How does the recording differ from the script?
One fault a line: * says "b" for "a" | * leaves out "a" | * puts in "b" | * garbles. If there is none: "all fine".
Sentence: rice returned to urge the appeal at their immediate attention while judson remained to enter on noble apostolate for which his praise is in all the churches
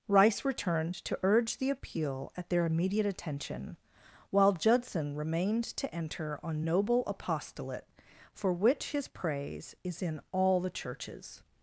all fine